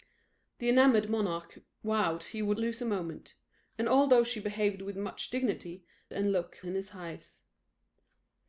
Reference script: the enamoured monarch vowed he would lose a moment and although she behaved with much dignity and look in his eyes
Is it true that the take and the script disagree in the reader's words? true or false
false